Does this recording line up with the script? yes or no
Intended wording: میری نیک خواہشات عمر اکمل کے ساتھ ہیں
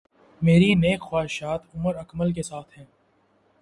yes